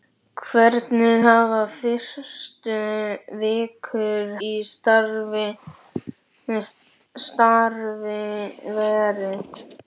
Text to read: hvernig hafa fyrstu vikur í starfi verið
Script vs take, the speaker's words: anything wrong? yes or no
no